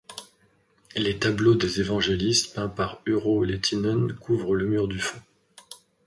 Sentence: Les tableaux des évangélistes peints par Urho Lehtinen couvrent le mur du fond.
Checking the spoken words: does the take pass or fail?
pass